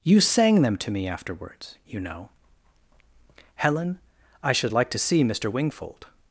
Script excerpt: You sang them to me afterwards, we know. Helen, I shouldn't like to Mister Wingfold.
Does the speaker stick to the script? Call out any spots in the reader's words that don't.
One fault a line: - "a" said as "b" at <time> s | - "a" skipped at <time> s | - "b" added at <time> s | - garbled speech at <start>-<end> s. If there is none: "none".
- "we" said as "you" at 1.8 s
- "shouldn't" said as "should" at 4.5 s
- "see" added at 5.0 s